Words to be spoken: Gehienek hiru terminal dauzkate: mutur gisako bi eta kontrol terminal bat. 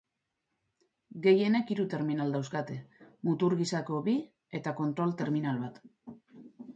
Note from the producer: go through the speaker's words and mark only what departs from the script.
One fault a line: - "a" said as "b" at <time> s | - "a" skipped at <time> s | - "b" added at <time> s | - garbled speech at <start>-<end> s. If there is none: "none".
none